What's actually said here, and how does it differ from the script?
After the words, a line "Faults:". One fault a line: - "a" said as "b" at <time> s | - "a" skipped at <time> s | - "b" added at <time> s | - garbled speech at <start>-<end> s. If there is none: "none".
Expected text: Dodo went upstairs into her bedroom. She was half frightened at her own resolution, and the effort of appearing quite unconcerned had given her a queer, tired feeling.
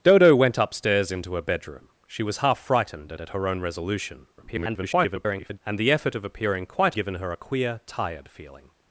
Dodo went upstairs into her bedroom. She was half frightened at at her own resolution, [garbled] and the effort of appearing quite given her a queer, tired feeling.
Faults:
- "at" added at 3.2 s
- garbled speech at 4.4-5.6 s
- "unconcerned had" skipped at 7.0 s